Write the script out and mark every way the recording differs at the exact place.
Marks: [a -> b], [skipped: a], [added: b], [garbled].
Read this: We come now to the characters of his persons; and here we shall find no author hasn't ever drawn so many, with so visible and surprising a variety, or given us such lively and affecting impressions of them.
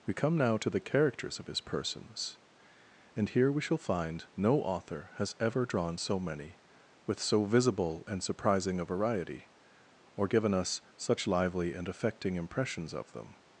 We come now to the characters of his persons; and here we shall find no author [hasn't -> has] ever drawn so many, with so visible and surprising a variety, or given us such lively and affecting impressions of them.